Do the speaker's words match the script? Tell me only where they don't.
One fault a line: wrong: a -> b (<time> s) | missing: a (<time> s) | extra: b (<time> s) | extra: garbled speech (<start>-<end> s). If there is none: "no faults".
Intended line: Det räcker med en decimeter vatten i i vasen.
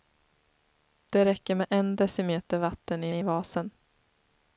no faults